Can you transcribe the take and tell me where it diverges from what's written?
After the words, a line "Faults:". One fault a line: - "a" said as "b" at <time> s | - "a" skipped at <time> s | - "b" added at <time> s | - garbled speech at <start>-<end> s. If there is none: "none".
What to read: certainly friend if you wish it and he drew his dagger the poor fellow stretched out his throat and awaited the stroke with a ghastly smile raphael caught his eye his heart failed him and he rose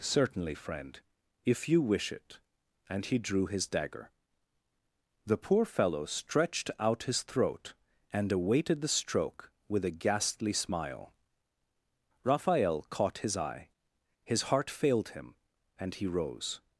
certainly friend if you wish it and he drew his dagger the poor fellow stretched out his throat and awaited the stroke with a ghastly smile raphael caught his eye his heart failed him and he rose
Faults:
none